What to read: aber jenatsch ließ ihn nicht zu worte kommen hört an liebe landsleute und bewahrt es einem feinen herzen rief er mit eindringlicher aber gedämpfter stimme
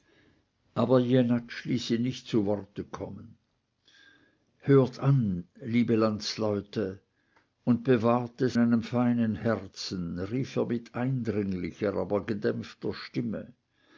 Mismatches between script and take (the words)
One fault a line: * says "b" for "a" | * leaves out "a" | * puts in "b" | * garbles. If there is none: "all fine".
all fine